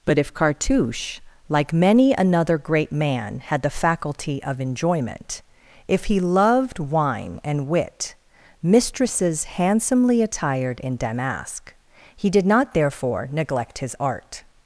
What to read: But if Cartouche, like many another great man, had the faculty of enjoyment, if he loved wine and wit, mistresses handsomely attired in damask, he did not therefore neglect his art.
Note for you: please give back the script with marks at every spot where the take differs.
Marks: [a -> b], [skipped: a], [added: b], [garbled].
But if Cartouche, like many another great man, had the faculty of enjoyment, if he loved wine and wit, mistresses handsomely attired in damask, he did not therefore neglect his art.